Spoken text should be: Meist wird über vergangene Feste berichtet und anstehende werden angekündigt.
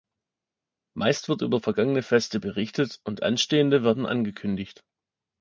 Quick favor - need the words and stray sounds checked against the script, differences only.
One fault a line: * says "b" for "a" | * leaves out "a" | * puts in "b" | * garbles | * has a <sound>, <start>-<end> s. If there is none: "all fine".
all fine